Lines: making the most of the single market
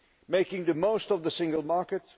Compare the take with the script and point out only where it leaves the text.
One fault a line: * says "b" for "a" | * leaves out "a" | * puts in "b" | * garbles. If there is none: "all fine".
all fine